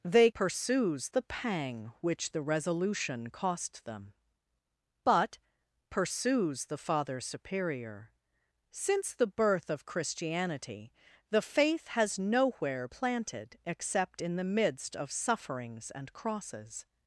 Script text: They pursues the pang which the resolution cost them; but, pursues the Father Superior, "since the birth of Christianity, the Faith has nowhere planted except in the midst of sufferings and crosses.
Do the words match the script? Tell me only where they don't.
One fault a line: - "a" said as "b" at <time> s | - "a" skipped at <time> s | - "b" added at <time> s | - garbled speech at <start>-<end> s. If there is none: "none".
none